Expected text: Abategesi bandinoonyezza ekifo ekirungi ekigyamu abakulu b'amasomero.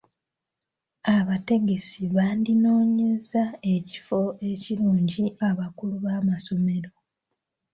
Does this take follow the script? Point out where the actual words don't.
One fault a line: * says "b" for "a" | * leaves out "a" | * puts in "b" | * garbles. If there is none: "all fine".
* leaves out "ekigyamu"